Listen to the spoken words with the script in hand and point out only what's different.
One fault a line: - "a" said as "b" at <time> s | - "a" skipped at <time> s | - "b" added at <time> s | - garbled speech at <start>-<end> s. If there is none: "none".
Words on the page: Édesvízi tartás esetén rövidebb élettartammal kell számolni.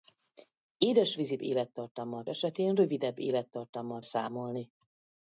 - "tartás" said as "élettartammal" at 1.4 s
- "kell" skipped at 4.0 s